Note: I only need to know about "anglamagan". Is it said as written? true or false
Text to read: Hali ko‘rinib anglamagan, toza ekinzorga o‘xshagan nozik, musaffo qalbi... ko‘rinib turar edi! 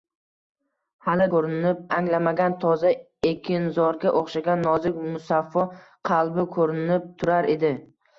true